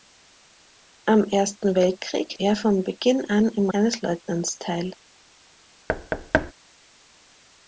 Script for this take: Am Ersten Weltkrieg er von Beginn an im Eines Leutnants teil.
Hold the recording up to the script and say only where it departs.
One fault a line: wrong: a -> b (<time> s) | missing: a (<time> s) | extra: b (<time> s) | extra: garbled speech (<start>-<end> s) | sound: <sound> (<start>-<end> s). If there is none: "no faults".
sound: thud (5.9-6.5 s)